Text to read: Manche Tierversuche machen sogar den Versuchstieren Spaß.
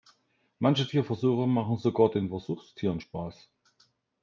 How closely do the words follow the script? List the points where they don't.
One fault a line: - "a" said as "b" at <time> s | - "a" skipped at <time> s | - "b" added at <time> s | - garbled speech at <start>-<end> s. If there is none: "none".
none